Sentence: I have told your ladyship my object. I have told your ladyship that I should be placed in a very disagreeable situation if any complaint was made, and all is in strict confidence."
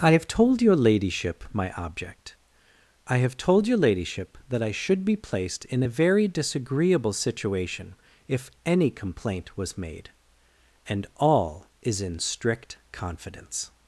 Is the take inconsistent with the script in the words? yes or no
no